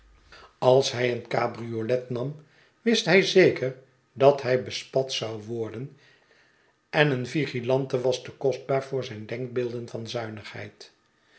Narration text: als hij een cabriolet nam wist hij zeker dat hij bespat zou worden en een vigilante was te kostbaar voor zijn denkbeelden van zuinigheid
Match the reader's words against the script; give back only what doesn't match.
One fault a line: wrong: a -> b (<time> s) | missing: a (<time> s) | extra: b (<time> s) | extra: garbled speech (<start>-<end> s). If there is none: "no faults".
no faults